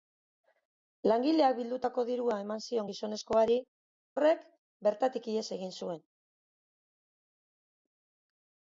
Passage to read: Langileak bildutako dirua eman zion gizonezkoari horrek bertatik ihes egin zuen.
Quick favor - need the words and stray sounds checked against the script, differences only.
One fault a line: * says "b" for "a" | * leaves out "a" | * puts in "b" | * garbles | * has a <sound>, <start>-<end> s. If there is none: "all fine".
all fine